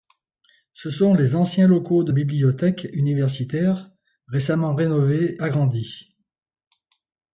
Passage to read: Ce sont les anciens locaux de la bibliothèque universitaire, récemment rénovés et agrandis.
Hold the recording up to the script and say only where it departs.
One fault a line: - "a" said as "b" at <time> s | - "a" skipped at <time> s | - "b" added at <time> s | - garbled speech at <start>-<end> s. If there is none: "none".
- "la" skipped at 2.1 s
- "et" skipped at 5.4 s